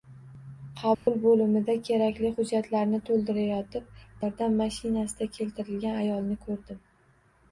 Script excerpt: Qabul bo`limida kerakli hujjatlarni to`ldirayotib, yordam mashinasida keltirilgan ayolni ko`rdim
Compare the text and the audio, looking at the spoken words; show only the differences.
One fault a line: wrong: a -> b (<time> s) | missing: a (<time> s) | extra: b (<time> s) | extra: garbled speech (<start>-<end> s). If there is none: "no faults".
no faults